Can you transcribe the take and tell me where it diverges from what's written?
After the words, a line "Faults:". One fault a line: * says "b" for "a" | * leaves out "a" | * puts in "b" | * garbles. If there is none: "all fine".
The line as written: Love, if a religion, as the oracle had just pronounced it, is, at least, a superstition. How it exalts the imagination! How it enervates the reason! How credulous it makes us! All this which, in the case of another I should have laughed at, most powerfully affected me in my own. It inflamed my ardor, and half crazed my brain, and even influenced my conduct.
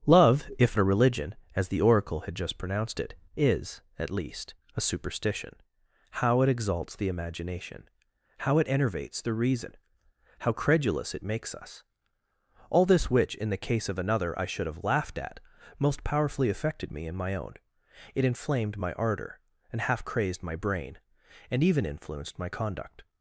Love, if a religion, as the oracle had just pronounced it, is, at least, a superstition. How it exalts the imagination! How it enervates the reason! How credulous it makes us! All this which, in the case of another I should have laughed at, most powerfully affected me in my own. It inflamed my ardor, and half crazed my brain, and even influenced my conduct.
Faults:
all fine